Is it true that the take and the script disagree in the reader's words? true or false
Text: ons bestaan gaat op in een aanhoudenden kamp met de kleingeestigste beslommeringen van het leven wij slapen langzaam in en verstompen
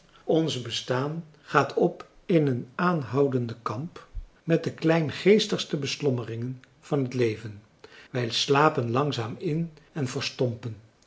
false